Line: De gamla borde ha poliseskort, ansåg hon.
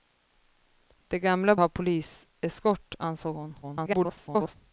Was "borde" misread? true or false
true